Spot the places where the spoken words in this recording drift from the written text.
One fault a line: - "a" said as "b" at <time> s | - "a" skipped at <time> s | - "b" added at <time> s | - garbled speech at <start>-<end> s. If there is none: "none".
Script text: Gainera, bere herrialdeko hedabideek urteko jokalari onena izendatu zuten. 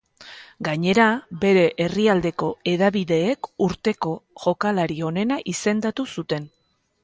none